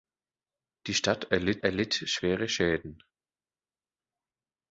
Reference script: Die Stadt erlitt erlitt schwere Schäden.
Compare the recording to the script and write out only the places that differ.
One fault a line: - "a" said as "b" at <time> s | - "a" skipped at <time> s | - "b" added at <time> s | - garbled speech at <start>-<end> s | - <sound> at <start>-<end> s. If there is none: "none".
none